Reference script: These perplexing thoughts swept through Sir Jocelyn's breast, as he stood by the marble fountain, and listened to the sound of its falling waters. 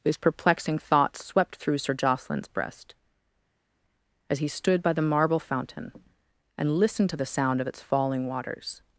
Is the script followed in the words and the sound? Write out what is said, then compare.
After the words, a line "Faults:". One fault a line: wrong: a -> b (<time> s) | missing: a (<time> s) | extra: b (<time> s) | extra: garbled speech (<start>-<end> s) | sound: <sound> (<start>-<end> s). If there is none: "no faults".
These perplexing thoughts swept through Sir Jocelyn's breast, as he stood by the marble fountain, and listened to the sound of its falling waters.
Faults:
no faults